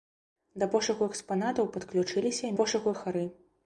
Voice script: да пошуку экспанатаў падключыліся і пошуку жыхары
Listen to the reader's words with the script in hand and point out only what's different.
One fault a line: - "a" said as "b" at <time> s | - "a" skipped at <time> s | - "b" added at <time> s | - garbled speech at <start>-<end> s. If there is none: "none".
none